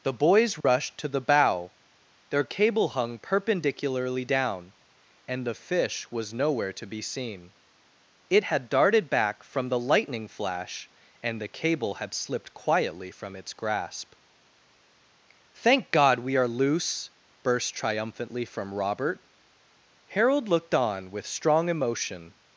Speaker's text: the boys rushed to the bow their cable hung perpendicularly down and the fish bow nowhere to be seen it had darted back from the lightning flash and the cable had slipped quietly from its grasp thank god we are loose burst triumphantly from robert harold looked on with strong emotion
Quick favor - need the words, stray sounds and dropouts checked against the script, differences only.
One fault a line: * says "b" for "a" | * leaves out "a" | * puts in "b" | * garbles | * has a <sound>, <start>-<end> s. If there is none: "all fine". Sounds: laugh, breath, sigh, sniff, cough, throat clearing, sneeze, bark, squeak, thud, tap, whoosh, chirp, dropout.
* has a dropout, 0.6-0.6 s
* says "was" for "bow"